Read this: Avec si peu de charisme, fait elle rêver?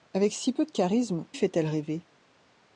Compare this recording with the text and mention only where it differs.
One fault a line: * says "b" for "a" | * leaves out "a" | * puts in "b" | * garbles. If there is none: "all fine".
all fine